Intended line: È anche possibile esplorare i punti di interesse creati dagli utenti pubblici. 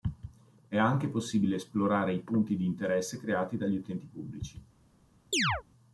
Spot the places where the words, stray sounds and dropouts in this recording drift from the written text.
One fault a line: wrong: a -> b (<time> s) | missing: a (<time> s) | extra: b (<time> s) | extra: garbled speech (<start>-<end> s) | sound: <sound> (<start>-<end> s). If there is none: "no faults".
sound: chirp (5.3-5.6 s)